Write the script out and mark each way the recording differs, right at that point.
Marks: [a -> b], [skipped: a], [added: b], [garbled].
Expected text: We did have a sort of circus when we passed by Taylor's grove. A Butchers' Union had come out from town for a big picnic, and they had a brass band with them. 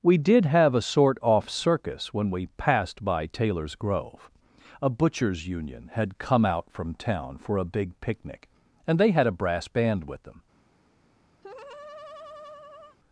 We did have a sort [of -> off] circus when we passed by Taylor's grove. A Butchers' Union had come out from town for a big picnic, and they had a brass band with them.